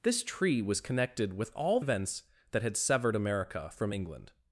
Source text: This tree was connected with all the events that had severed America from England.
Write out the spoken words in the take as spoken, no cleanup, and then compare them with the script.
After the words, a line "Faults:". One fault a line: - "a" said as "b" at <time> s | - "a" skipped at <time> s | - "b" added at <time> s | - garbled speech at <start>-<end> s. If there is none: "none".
This tree was connected with all events that had severed America from England.
Faults:
- "the" skipped at 1.8 s